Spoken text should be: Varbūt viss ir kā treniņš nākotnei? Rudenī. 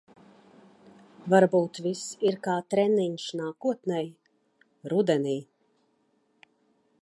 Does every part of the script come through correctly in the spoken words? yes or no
yes